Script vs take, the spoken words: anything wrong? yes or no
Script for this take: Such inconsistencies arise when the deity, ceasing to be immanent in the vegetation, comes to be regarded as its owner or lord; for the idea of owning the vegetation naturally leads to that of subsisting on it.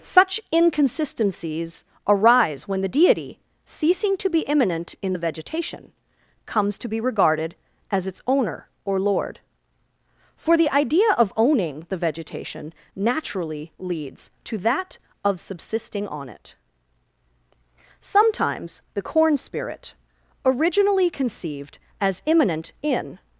yes